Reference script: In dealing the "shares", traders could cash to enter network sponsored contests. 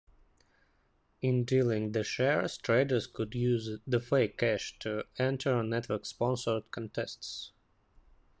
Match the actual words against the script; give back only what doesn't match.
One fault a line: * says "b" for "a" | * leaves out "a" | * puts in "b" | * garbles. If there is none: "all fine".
* puts in "use the fake"